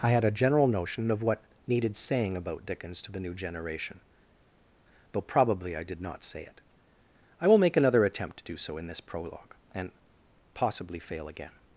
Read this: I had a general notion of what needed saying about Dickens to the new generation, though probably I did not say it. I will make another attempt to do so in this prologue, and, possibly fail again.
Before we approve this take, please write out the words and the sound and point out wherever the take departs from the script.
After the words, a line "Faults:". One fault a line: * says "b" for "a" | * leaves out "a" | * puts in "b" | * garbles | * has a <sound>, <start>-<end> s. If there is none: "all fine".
I had a general notion of what needed saying about Dickens to the new generation, though probably I did not say it. I will make another attempt to do so in this prologue, and, possibly fail again.
Faults:
all fine